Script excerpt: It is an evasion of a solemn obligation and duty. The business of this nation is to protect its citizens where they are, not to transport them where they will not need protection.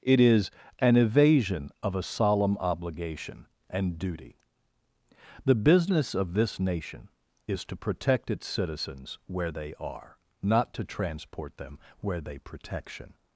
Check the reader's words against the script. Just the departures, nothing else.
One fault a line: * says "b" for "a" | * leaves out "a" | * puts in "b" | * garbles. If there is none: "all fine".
* leaves out "will not need"